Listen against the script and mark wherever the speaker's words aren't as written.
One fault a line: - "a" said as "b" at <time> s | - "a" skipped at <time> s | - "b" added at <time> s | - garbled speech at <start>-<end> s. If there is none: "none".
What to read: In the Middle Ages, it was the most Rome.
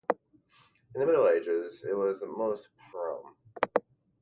none